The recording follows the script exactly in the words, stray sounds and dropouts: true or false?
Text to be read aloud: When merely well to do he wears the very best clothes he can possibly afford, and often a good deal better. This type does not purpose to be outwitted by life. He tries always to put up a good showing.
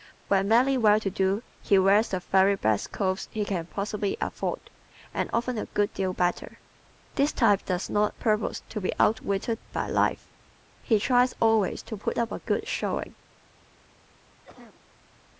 false